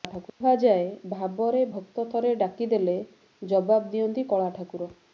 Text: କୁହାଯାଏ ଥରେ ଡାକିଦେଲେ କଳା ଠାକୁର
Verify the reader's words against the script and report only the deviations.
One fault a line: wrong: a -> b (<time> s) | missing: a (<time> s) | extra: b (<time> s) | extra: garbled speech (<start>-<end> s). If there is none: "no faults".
extra: ଭାବରେ ଭକ୍ତ (1.1 s)
extra: ଜବାବ ଦିଅନ୍ତି (3.4 s)